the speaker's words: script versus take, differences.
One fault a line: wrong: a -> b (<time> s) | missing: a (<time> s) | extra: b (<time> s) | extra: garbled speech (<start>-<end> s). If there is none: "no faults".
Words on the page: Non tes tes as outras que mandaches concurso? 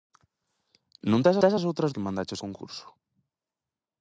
no faults